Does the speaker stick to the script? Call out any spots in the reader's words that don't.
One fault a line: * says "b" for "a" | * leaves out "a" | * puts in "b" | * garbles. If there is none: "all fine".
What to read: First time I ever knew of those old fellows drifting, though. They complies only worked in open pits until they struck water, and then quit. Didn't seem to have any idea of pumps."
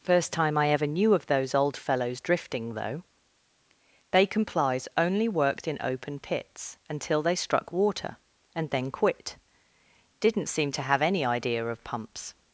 all fine